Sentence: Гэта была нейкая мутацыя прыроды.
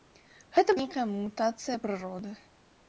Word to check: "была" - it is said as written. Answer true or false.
false